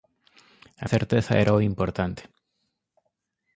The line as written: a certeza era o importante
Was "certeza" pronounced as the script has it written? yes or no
yes